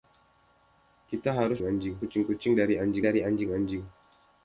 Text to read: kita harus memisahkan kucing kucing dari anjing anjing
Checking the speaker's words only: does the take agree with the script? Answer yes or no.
no